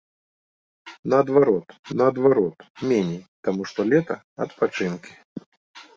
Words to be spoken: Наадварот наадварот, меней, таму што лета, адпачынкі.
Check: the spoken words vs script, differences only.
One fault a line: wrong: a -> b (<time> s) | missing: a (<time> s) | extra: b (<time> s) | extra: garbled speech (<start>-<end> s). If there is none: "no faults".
no faults